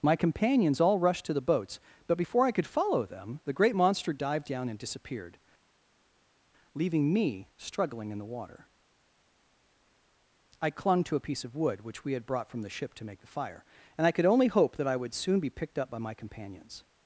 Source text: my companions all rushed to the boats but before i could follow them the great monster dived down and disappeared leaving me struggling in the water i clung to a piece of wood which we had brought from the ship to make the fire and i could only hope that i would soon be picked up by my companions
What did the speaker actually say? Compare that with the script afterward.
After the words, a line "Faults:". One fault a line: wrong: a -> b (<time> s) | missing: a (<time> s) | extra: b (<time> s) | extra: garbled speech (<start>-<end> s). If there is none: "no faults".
my companions all rushed to the boats but before i could follow them the great monster dived down and disappeared leaving me struggling in the water i clung to a piece of wood which we had brought from the ship to make the fire and i could only hope that i would soon be picked up by my companions
Faults:
no faults